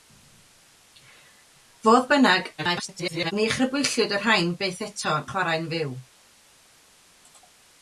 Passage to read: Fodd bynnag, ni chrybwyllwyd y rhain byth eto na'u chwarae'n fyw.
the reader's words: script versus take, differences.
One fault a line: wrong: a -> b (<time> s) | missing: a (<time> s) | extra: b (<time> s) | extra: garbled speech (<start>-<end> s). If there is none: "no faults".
extra: garbled speech (2.6-3.3 s)
missing: na'u (5.1 s)